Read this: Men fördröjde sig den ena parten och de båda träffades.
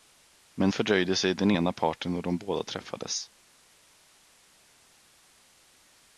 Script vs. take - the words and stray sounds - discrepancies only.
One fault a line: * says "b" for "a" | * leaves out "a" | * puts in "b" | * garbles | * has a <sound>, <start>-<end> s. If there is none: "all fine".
all fine